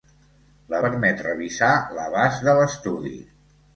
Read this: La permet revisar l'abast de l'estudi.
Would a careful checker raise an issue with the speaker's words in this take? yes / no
no